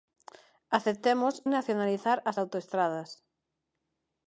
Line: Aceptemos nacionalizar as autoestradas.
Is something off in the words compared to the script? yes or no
no